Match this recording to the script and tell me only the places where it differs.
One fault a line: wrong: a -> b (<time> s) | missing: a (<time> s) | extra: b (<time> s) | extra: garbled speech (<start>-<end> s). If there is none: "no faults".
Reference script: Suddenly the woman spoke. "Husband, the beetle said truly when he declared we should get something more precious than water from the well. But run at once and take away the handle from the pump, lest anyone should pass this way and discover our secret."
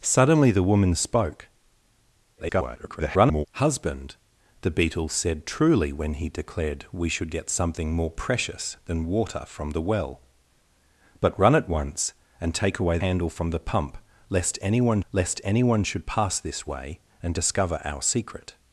extra: garbled speech (2.4-3.5 s)
missing: the (13.0 s)
extra: lest anyone (15.1 s)